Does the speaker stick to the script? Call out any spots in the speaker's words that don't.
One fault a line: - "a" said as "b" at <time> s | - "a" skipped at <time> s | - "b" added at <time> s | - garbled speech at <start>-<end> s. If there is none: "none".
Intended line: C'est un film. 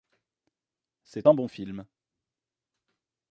- "bon" added at 1.3 s